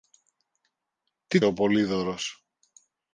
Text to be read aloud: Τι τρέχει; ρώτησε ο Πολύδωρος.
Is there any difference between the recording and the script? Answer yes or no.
yes